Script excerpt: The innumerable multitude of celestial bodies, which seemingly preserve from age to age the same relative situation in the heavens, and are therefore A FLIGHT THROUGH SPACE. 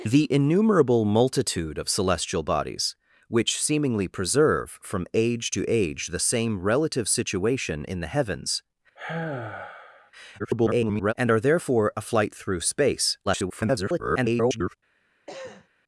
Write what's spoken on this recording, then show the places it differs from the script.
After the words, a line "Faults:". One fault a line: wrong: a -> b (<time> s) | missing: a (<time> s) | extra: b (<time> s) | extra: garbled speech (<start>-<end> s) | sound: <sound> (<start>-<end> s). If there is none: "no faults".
The innumerable multitude of celestial bodies, which seemingly preserve from age to age the same relative situation in the heavens, [garbled] and are therefore A FLIGHT THROUGH SPACE. [garbled]
Faults:
sound: sigh (9.0-10.1 s)
extra: garbled speech (10.4-11.1 s)
extra: garbled speech (13.3-14.7 s)
sound: cough (15.3-15.7 s)